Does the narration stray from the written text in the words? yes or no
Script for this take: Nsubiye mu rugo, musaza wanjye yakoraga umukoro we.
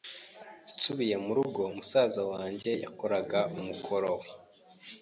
no